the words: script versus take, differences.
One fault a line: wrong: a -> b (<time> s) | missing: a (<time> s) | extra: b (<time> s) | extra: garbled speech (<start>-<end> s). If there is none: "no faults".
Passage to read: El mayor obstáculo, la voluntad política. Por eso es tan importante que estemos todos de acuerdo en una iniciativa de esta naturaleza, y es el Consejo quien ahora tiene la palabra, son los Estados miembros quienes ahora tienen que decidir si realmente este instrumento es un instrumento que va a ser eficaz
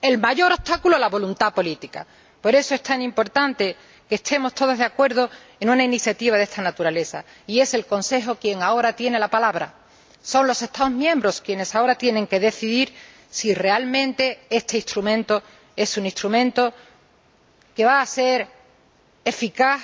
no faults